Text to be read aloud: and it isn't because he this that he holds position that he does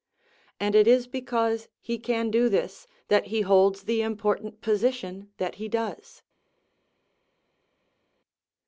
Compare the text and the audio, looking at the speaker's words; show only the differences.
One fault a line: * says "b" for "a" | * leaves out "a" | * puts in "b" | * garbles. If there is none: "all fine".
* says "is" for "isn't"
* puts in "can do"
* puts in "the important"